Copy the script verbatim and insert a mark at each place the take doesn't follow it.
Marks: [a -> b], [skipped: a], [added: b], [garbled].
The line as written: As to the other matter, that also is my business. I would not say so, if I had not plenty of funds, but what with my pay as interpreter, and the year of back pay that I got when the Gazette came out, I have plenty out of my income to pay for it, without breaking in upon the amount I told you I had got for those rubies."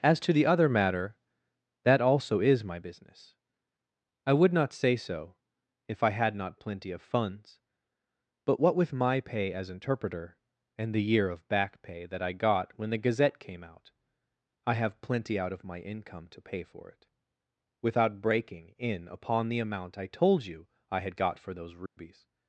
As to the other matter, that also is my business. I would not say so, if I had not plenty of funds, but what with my pay as interpreter, and the year of back pay that I got when the Gazette came out, I have plenty out of my income to pay for it, without breaking in upon the amount I told you I had got for those rubies."